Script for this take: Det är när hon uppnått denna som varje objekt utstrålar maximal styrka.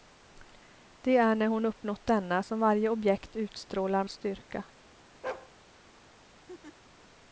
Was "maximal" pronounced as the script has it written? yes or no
no